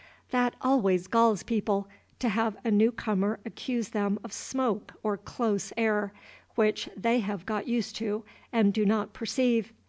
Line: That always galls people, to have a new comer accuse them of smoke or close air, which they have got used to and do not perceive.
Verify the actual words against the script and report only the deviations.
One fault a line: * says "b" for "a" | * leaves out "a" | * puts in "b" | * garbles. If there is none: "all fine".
all fine